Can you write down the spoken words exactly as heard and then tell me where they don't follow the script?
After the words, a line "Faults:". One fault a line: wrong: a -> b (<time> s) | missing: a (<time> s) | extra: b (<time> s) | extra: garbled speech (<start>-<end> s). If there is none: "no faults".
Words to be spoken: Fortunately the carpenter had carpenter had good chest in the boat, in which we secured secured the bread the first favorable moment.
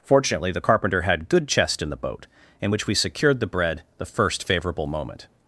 Fortunately the carpenter had good chest in the boat, in which we secured the bread the first favorable moment.
Faults:
missing: carpenter had (1.3 s)
missing: secured (3.4 s)